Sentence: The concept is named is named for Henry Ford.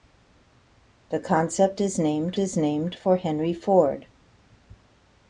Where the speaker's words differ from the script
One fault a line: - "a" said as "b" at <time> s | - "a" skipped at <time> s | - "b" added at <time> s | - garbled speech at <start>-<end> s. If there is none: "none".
none